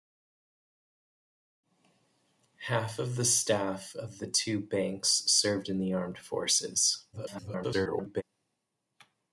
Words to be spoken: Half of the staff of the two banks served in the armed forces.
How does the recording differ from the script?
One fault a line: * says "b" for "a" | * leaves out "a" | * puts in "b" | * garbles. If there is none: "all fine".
* garbles